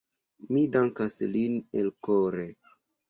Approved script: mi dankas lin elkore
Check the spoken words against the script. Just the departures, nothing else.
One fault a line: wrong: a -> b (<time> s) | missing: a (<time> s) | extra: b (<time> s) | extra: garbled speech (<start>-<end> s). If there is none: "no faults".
no faults